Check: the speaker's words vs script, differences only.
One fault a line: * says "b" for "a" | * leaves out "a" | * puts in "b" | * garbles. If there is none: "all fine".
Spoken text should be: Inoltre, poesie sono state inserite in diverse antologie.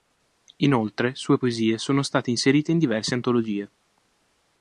* puts in "sue"